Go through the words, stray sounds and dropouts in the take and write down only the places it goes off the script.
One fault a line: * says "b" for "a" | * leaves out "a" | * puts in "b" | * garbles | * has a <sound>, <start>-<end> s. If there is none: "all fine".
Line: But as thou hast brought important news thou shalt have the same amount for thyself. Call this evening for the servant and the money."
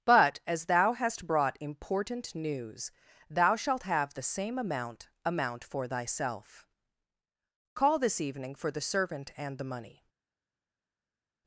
* puts in "amount"